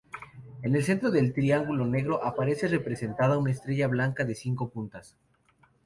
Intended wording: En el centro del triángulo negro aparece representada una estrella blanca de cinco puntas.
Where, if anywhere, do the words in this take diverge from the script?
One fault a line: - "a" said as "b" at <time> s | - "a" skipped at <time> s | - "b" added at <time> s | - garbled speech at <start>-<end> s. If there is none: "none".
none